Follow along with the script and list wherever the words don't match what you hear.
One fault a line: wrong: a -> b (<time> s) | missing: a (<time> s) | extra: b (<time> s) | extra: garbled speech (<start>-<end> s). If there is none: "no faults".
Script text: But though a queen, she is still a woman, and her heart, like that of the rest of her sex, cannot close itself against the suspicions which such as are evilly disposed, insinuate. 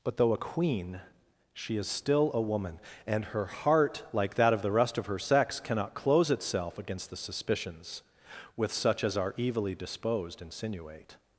wrong: which -> with (8.5 s)